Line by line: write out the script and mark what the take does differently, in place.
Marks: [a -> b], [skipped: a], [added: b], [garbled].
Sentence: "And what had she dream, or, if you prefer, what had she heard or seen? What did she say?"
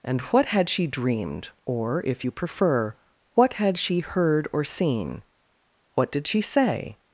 "And what had she [dream, -> dreamed] or, if you prefer, what had she heard or seen? What did she say?"